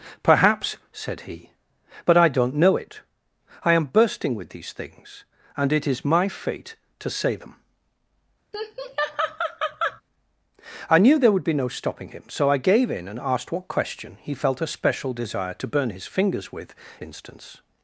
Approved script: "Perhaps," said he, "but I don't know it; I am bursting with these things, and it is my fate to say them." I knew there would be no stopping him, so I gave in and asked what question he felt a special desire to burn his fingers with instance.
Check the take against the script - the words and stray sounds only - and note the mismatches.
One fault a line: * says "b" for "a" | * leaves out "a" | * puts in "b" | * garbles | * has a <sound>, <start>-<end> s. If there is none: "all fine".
* has a laugh, 8.5-10.0 s